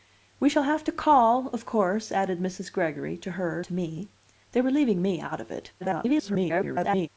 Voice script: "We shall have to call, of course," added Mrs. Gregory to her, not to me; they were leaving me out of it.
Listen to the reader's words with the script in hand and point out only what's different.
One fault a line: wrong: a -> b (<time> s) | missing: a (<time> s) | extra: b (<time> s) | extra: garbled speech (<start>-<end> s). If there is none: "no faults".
missing: not (3.6 s)
extra: garbled speech (5.8-7.1 s)